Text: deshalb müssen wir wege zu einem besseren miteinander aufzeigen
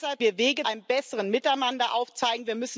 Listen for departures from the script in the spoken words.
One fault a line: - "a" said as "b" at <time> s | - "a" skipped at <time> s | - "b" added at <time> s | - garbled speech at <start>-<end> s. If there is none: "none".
- "müssen" skipped at 0.2 s
- "zu" skipped at 0.6 s